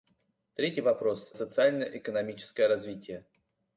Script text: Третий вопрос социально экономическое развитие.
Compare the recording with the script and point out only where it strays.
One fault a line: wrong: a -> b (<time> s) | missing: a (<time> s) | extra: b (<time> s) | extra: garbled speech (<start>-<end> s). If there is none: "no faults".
no faults